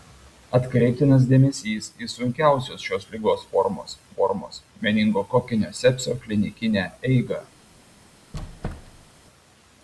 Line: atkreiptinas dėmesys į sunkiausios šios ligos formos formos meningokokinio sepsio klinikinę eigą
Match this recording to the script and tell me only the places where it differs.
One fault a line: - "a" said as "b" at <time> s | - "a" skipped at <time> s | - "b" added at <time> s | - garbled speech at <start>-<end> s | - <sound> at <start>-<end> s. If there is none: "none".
- squeak at 8.3-9.1 s